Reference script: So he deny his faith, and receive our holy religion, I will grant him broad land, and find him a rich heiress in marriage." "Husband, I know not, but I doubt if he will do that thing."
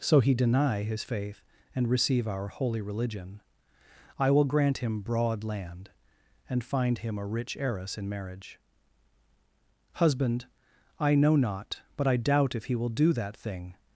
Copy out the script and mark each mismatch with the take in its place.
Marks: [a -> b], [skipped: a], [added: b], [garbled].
So he deny his faith, and receive our holy religion, I will grant him broad land, and find him a rich heiress in marriage." "Husband, I know not, but I doubt if he will do that thing."